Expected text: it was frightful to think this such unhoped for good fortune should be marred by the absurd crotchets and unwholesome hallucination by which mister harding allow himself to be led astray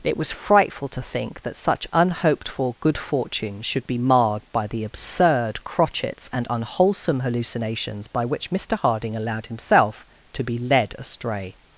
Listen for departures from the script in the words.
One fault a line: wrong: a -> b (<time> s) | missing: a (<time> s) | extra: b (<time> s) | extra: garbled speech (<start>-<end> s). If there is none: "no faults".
wrong: this -> that (1.4 s)
wrong: hallucination -> hallucinations (7.2 s)
wrong: allow -> allowed (9.2 s)